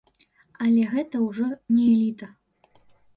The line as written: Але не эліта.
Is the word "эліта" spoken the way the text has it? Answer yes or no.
yes